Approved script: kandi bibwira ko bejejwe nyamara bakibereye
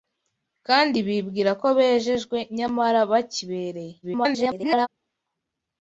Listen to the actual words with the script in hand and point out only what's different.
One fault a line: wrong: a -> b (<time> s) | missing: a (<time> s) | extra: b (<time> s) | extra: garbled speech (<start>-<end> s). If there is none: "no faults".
extra: garbled speech (4.0-4.9 s)